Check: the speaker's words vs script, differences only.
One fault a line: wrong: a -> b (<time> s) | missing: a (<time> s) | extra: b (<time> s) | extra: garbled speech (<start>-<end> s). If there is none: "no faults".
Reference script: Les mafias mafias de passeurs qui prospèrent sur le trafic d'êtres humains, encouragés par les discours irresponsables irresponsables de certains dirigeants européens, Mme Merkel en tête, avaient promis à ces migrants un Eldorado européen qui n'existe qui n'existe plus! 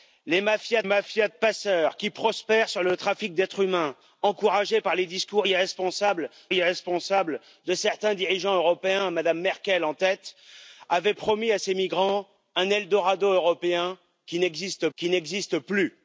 no faults